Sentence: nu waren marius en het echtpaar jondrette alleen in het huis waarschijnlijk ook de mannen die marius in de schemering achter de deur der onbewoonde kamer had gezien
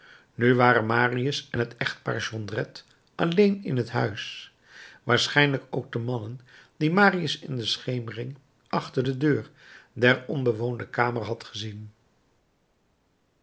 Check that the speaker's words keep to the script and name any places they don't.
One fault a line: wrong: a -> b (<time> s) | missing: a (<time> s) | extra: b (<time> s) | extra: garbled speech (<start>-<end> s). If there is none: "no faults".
no faults